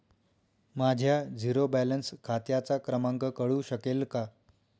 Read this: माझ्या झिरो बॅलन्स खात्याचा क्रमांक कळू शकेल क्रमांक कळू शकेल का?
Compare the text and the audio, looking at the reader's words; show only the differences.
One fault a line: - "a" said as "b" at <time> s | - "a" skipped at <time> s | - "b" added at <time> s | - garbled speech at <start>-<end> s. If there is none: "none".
- "क्रमांक कळू शकेल" skipped at 4.0 s